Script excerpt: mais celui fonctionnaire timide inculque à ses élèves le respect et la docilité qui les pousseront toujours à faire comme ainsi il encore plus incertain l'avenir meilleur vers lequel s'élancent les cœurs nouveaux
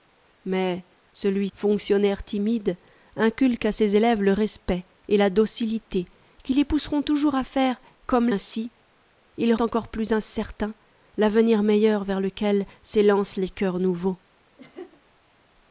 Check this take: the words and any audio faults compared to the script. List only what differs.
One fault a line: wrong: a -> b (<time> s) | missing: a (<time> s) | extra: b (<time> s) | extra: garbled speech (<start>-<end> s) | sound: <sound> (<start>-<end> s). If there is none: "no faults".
sound: laugh (14.6-15.0 s)